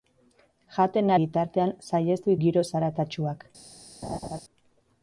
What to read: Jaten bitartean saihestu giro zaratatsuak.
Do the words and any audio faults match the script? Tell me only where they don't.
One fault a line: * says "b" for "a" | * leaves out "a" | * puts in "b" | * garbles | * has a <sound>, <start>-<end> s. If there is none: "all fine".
* has a laugh, 4.0-4.4 s